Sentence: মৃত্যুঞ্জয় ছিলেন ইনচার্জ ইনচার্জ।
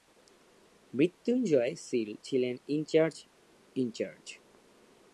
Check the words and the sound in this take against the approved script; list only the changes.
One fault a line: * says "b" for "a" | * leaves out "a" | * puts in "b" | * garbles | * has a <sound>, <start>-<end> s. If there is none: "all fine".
* puts in "সিল"